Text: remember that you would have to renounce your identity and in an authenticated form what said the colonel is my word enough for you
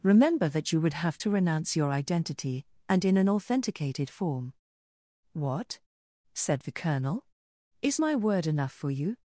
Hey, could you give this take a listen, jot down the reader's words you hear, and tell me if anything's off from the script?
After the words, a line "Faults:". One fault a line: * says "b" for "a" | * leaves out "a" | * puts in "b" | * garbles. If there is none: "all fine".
remember that you would have to renounce your identity and in an authenticated form what said the colonel is my word enough for you
Faults:
all fine